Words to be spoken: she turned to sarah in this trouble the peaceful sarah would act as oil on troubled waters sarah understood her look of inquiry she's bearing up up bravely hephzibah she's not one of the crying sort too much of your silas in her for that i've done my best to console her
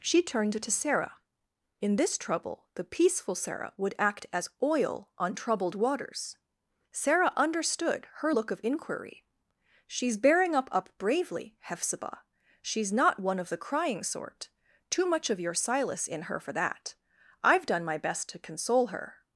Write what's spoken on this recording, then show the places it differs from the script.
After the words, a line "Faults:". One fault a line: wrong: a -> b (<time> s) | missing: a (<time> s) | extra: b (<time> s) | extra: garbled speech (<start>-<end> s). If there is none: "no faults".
she turned to sarah in this trouble the peaceful sarah would act as oil on troubled waters sarah understood her look of inquiry she's bearing up up bravely hephzibah she's not one of the crying sort too much of your silas in her for that i've done my best to console her
Faults:
no faults